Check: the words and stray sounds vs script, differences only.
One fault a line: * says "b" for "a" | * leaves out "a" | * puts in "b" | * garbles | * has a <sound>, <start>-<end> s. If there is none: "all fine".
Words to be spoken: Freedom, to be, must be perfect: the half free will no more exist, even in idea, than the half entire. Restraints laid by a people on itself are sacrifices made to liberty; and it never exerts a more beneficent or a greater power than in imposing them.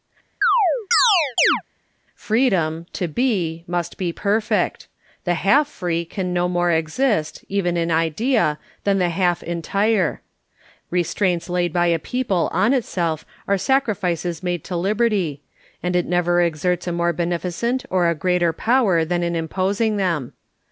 * has a chirp, 0.4-1.6 s
* says "can" for "will"